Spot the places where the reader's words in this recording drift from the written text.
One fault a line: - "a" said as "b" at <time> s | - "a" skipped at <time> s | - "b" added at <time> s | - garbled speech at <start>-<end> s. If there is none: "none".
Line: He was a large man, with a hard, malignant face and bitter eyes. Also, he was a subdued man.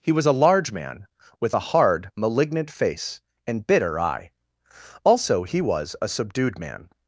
- "eyes" said as "eye" at 4.0 s